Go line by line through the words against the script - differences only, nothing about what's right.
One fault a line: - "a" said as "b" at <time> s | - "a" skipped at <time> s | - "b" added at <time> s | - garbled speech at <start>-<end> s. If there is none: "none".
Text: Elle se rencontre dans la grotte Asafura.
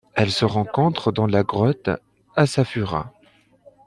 none